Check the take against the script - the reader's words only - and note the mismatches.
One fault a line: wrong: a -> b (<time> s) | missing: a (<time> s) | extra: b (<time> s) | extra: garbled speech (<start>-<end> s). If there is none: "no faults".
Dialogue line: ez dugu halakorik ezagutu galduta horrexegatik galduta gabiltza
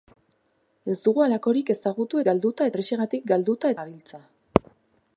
no faults